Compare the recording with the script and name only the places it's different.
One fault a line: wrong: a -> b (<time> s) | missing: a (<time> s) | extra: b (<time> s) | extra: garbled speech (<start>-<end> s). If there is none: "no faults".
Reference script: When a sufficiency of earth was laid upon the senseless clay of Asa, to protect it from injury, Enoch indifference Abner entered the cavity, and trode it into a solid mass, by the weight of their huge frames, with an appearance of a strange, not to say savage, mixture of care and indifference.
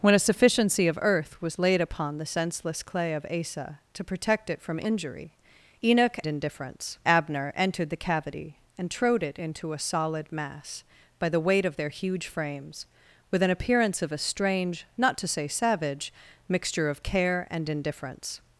no faults